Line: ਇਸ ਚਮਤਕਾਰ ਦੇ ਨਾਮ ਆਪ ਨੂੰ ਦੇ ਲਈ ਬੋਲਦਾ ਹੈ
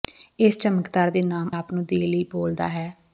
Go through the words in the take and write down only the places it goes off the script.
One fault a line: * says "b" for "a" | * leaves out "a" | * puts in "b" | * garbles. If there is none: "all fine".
all fine